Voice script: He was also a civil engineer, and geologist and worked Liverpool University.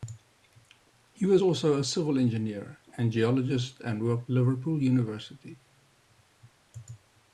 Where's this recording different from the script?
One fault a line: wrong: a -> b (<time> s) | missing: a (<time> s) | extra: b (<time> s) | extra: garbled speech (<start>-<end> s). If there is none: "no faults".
no faults